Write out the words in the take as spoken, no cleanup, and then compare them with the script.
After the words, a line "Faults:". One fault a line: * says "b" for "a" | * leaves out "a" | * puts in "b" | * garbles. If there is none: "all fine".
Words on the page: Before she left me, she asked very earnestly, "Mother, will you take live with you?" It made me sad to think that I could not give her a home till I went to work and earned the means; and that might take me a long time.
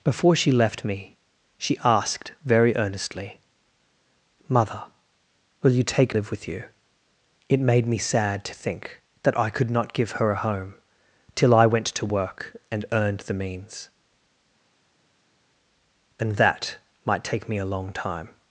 Before she left me, she asked very earnestly, "Mother, will you take live with you?" It made me sad to think that I could not give her a home till I went to work and earned the means; and that might take me a long time.
Faults:
all fine